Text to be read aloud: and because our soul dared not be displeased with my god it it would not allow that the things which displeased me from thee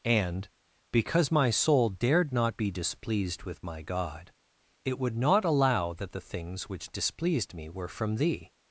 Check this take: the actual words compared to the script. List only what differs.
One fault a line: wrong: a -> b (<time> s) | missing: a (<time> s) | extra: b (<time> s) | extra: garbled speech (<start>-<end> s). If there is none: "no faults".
wrong: our -> my (1.3 s)
missing: it (5.0 s)
extra: were (7.7 s)